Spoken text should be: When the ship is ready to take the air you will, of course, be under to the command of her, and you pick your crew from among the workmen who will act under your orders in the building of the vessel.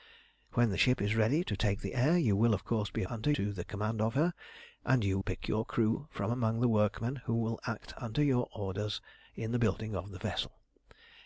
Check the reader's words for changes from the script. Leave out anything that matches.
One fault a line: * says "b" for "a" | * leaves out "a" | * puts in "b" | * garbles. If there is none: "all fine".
all fine